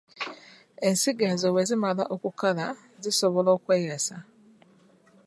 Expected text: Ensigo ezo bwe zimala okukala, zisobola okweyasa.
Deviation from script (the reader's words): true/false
false